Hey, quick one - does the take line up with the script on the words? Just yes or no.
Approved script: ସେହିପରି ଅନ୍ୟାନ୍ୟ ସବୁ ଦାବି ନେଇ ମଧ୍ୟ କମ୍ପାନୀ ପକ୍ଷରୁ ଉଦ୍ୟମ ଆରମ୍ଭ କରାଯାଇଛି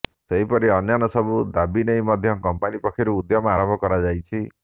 yes